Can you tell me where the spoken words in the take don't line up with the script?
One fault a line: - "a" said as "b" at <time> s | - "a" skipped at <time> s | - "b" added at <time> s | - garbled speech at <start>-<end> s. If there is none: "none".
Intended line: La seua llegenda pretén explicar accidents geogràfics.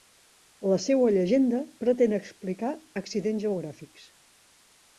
none